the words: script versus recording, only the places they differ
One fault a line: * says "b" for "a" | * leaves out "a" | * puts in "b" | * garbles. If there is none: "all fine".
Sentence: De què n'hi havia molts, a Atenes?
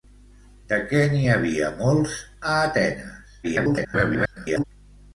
* garbles